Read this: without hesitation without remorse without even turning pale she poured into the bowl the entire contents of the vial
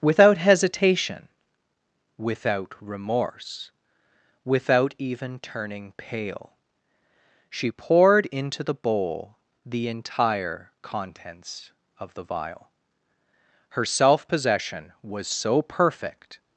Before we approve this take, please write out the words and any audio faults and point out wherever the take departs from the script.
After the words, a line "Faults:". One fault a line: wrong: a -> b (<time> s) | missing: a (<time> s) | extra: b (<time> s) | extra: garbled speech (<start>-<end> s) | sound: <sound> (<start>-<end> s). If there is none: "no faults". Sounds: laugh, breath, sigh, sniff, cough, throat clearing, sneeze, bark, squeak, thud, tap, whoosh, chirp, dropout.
without hesitation without remorse without even turning pale she poured into the bowl the entire contents of the vial her self possession was so perfect
Faults:
extra: her self possession was so perfect (13.7 s)